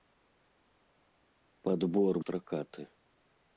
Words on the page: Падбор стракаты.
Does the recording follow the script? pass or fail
pass